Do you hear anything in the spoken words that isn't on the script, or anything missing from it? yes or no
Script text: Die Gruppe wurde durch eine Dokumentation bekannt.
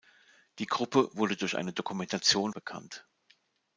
no